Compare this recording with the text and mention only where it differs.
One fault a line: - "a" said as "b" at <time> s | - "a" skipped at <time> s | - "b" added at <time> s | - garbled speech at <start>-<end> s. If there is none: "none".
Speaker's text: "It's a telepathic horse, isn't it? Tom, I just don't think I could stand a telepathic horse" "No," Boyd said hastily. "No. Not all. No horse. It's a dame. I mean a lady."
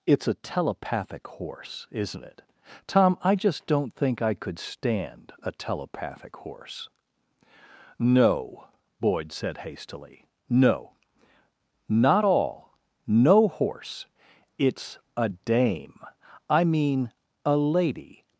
none